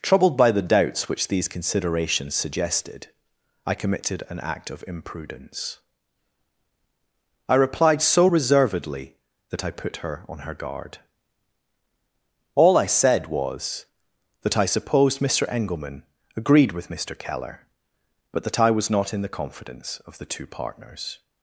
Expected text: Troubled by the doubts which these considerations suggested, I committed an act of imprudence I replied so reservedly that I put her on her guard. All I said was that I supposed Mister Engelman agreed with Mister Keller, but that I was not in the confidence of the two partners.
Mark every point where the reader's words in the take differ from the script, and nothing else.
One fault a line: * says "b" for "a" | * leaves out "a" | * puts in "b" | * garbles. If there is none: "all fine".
all fine